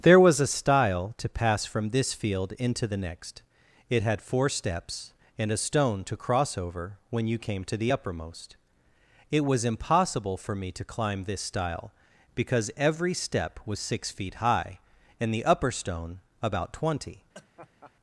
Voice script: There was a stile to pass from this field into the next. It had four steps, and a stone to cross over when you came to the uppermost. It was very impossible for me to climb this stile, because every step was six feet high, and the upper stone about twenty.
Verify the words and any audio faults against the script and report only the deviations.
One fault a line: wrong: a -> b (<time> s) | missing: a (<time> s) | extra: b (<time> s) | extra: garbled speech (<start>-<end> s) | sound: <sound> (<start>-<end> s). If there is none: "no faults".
missing: very (9.7 s)
sound: laugh (17.3-17.9 s)